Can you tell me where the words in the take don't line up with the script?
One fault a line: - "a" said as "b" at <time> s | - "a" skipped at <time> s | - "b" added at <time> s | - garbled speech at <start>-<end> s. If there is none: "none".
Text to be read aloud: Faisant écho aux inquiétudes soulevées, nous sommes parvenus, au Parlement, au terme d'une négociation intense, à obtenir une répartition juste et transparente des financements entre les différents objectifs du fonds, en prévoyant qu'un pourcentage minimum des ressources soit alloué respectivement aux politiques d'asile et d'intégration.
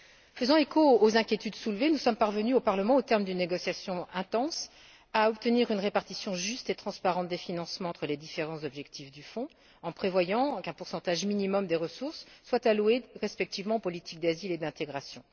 none